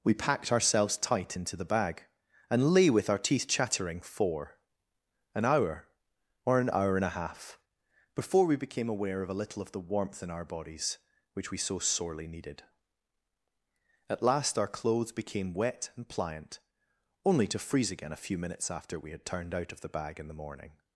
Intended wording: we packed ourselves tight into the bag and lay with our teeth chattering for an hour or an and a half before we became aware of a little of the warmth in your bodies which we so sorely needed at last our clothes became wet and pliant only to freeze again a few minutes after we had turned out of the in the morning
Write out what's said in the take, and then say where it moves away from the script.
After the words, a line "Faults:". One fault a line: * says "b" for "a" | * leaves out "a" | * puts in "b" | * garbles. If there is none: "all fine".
we packed ourselves tight into the bag and lay with our teeth chattering for an hour or an hour and a half before we became aware of a little of the warmth in our bodies which we so sorely needed at last our clothes became wet and pliant only to freeze again a few minutes after we had turned out of the bag in the morning
Faults:
* puts in "hour"
* says "our" for "your"
* puts in "bag"